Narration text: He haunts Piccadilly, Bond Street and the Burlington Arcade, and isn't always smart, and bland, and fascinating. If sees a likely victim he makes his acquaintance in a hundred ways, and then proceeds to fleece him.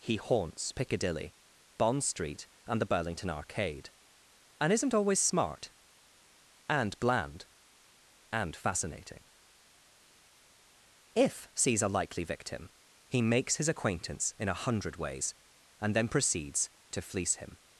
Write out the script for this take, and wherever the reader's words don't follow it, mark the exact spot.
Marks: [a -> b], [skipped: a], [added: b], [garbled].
He haunts Piccadilly, Bond Street and the Burlington Arcade, and isn't always smart, and bland, and fascinating. If sees a likely victim he makes his acquaintance in a hundred ways, and then proceeds to fleece him.